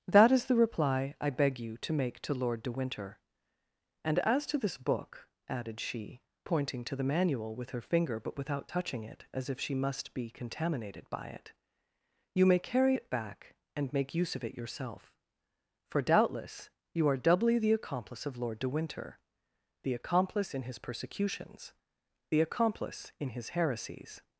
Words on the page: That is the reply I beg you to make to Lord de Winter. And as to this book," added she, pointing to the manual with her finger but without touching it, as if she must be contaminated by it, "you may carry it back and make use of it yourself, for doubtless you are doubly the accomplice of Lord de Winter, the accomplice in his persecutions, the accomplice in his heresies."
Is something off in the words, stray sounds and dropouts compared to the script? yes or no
no